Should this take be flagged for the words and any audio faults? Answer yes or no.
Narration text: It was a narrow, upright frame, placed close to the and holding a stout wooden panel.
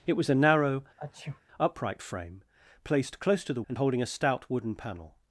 yes